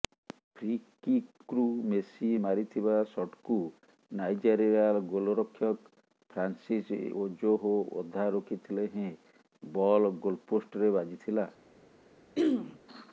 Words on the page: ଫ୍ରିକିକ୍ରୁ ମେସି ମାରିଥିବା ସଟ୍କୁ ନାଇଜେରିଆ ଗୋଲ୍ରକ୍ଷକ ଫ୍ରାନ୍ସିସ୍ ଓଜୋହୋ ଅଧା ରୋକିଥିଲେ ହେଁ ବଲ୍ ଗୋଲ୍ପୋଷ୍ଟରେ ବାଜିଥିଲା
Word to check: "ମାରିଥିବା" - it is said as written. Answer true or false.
true